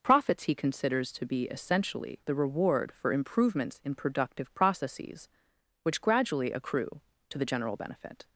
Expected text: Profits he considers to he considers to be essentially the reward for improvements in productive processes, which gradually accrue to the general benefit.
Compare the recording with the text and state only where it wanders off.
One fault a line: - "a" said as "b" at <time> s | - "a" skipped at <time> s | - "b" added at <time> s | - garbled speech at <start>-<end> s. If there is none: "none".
- "he considers to" skipped at 1.3 s